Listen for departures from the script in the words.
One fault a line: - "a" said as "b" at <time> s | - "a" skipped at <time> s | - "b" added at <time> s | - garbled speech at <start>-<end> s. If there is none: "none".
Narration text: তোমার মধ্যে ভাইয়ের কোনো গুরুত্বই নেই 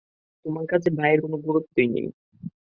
- "মধ্যে" said as "কাছে" at 0.7 s